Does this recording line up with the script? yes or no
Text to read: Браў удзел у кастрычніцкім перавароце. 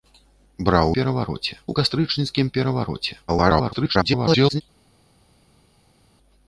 no